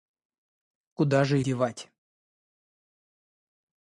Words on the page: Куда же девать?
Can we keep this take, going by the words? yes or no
yes